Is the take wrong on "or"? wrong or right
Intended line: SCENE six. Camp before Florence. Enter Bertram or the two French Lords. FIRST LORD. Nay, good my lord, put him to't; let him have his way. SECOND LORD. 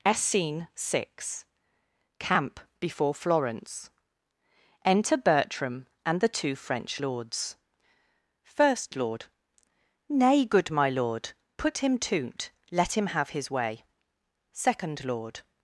wrong